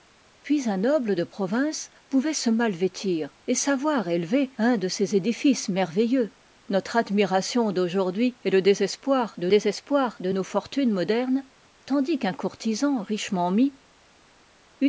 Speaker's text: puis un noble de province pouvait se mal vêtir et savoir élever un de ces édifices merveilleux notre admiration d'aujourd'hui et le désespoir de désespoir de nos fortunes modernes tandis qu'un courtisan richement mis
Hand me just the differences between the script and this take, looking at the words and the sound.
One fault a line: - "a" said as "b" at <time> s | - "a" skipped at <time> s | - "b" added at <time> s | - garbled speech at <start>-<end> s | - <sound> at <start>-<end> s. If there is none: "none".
none